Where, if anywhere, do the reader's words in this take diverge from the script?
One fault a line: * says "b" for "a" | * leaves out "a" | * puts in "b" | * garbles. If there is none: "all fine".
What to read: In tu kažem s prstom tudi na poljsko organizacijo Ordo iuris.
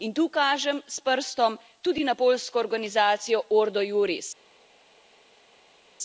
all fine